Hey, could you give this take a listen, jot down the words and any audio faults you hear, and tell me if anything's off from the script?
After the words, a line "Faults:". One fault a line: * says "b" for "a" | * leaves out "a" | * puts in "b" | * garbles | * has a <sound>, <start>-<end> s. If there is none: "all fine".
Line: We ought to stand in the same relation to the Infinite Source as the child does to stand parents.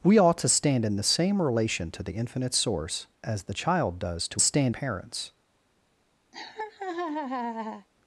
We ought to stand in the same relation to the Infinite Source as the child does to stand parents.
Faults:
* has a laugh, 6.3-7.9 s